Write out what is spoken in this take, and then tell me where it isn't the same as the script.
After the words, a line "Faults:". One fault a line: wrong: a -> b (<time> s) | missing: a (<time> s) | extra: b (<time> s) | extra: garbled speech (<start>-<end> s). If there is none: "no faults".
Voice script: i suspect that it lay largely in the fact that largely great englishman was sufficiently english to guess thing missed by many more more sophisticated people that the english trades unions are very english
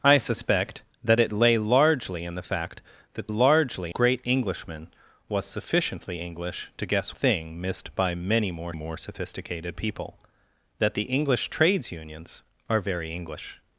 i suspect that it lay largely in the fact that largely great englishman was sufficiently english to guess thing missed by many more more sophisticated people that the english trades unions are very english
Faults:
no faults